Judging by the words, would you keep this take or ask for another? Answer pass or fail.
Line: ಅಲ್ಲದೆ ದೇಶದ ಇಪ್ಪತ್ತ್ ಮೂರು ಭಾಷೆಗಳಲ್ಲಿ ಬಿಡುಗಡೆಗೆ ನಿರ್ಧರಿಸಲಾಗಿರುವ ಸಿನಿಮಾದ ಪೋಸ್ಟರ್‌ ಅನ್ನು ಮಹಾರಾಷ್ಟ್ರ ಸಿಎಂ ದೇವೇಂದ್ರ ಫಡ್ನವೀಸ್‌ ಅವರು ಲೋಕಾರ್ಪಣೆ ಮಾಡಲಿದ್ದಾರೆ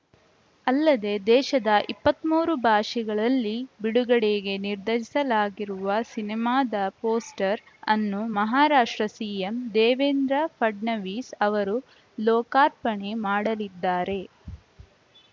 pass